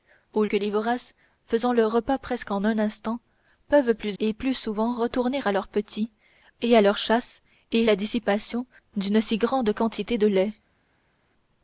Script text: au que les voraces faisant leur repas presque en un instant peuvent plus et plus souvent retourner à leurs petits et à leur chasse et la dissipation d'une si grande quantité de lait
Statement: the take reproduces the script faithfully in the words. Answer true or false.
true